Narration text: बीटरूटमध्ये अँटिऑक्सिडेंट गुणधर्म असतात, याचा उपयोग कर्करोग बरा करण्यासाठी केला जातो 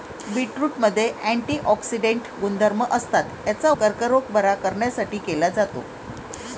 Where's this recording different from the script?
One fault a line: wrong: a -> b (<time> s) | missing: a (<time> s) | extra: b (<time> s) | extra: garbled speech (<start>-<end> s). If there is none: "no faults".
missing: उपयोग (3.7 s)